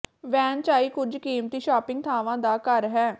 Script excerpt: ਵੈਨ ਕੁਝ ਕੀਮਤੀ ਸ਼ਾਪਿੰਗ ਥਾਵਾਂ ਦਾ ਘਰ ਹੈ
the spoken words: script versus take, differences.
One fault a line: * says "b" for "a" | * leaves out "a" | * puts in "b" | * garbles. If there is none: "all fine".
* puts in "ਚਾਈ"